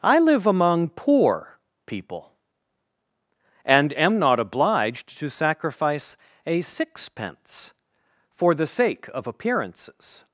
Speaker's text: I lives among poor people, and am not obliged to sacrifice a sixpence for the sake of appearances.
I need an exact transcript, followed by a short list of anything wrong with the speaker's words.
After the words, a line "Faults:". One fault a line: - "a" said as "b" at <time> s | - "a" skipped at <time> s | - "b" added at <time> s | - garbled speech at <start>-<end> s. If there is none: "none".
I live among poor people, and am not obliged to sacrifice a sixpence for the sake of appearances.
Faults:
- "lives" said as "live" at 0.2 s